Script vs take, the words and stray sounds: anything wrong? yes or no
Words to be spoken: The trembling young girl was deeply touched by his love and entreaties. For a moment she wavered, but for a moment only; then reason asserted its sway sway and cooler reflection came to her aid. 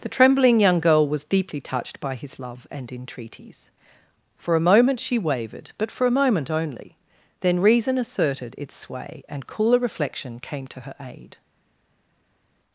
yes